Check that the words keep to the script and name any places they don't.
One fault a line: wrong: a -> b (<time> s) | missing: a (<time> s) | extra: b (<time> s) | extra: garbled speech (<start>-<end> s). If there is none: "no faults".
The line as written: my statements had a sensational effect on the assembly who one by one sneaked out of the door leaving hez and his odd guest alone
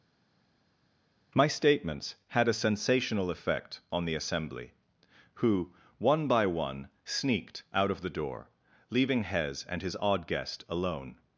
no faults